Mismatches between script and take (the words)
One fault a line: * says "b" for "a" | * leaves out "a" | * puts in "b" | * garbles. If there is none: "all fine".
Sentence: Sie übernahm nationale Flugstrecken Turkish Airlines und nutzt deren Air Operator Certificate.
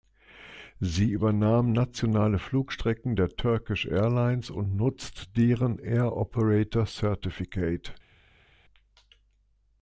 * puts in "der"